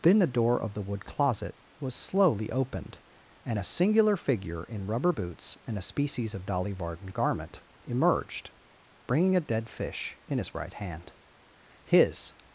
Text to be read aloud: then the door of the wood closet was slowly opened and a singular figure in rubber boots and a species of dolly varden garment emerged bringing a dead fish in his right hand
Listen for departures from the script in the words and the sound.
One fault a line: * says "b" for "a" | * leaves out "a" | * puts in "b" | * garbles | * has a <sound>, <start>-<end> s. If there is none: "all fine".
* puts in "his"